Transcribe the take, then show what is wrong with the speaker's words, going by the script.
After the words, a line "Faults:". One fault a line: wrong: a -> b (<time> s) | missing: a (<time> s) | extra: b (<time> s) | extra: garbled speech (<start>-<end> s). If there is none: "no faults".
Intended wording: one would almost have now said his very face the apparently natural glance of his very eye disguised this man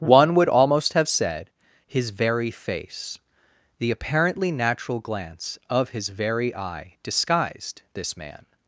one would almost have said his very face the apparently natural glance of his very eye disguised this man
Faults:
missing: now (1.1 s)